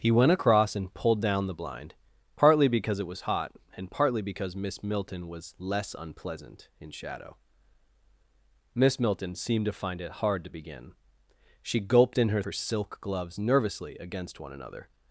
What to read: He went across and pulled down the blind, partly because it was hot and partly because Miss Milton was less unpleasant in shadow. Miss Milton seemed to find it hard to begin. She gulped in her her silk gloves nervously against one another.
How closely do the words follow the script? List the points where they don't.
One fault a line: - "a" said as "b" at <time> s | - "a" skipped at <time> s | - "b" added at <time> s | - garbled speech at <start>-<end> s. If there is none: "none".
none